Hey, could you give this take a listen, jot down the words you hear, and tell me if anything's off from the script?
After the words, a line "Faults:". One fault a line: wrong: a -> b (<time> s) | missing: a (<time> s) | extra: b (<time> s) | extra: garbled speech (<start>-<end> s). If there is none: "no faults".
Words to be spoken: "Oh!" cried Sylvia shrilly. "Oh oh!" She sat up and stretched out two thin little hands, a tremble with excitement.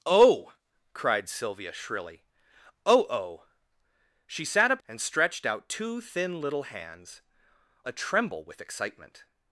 "Oh!" cried Sylvia shrilly. "Oh oh!" She sat up and stretched out two thin little hands, a tremble with excitement.
Faults:
no faults